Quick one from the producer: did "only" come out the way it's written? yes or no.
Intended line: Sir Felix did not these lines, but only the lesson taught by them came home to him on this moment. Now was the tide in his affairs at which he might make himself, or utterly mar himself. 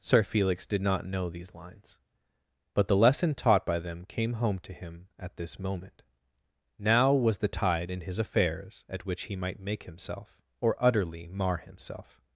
no